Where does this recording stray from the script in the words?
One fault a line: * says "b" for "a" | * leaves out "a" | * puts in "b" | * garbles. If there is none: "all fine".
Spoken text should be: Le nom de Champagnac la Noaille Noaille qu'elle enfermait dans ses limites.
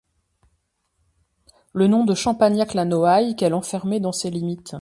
* leaves out "Noaille"